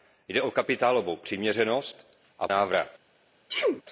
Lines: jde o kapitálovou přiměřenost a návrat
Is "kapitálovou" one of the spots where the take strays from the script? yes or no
no